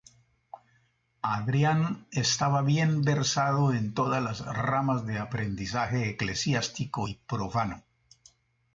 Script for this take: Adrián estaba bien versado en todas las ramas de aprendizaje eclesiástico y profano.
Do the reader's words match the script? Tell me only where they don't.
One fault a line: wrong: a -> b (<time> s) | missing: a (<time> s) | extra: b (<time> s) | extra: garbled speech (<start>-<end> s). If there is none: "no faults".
no faults